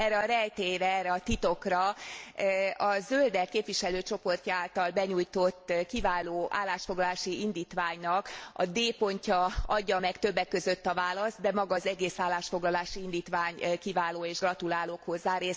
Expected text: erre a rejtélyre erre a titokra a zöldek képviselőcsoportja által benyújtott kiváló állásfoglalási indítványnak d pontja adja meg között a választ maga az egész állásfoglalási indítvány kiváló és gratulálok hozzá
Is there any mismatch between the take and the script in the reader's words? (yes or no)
yes